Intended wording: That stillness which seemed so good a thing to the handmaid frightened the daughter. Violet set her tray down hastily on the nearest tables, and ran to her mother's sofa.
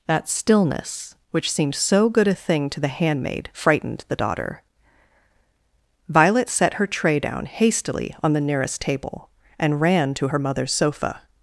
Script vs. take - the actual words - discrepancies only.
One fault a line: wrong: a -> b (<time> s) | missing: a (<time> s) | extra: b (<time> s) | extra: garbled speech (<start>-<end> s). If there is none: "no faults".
wrong: tables -> table (8.8 s)